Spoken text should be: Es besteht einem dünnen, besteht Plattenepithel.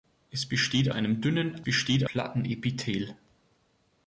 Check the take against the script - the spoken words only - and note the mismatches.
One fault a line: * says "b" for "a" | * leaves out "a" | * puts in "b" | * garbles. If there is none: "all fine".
all fine